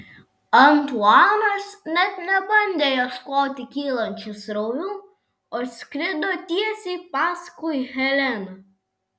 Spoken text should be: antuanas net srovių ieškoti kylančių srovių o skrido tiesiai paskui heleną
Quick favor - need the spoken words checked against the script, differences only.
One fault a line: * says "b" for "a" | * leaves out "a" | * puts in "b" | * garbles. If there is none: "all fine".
* says "nebandė" for "srovių"